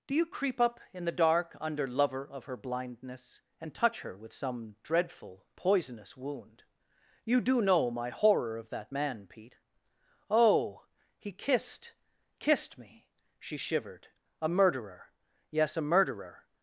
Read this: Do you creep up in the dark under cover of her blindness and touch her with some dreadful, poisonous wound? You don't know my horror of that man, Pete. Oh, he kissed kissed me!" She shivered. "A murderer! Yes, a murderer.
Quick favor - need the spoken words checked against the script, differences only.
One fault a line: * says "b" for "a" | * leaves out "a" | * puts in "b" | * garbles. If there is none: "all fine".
* says "lover" for "cover"
* says "do" for "don't"